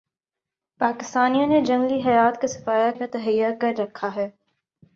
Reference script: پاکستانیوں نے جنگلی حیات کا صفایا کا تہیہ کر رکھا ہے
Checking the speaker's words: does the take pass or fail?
pass